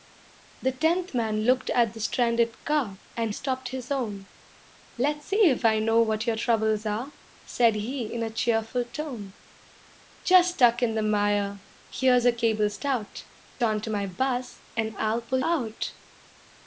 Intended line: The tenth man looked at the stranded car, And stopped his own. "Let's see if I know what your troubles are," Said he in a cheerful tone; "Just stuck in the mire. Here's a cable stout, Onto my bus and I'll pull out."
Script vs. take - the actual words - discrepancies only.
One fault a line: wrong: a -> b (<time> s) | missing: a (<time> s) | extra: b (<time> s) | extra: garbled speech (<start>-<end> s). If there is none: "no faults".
no faults